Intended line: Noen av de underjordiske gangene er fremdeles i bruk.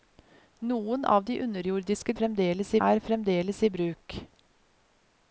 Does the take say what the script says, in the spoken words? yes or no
no